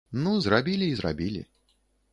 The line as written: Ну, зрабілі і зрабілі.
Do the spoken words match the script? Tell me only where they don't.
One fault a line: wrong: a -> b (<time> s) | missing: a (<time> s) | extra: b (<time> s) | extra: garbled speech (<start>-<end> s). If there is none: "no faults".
no faults